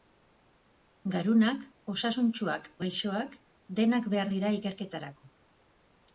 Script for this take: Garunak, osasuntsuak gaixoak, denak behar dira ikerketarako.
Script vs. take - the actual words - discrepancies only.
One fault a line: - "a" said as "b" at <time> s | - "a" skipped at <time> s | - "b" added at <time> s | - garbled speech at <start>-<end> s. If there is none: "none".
none